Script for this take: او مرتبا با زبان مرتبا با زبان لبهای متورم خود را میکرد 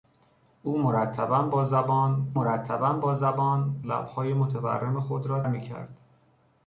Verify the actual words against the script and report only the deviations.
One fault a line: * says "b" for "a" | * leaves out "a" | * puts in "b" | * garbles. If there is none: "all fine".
all fine